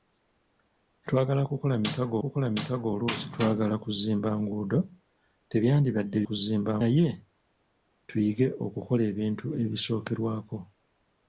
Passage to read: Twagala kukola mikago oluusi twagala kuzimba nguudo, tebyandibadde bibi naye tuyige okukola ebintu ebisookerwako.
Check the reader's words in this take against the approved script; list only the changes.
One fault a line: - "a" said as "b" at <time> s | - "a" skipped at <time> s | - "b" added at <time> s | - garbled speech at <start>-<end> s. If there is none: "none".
- "kukola mikago" added at 2.2 s
- "bibi" said as "kuzimba" at 6.3 s